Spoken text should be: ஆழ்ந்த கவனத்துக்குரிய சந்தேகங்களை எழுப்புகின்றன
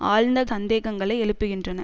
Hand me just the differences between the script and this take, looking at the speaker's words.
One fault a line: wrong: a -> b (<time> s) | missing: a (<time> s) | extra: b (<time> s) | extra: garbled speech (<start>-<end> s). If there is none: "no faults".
missing: கவனத்துக்குரிய (0.5 s)